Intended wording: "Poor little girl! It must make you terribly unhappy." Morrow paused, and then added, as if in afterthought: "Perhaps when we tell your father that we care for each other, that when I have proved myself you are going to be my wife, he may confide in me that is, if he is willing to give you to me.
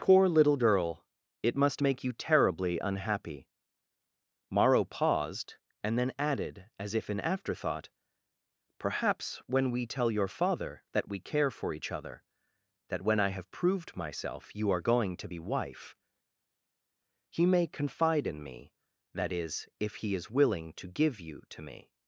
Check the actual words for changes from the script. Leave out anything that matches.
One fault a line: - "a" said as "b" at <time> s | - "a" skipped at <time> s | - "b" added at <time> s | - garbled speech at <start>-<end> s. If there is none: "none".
- "my" skipped at 15.4 s